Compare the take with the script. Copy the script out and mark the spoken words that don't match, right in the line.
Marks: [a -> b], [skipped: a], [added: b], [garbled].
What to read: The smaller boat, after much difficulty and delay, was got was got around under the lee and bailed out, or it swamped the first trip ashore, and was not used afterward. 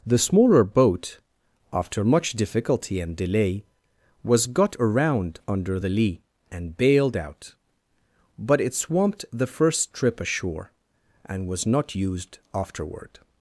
The smaller boat, after much difficulty and delay, was got [skipped: was got] around under the lee and bailed out, [or -> but] it swamped the first trip ashore, and was not used afterward.